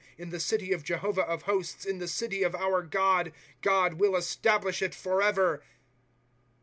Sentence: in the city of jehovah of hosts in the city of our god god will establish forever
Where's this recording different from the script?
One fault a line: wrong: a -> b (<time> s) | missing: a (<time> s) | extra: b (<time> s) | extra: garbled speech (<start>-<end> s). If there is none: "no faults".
extra: it (4.8 s)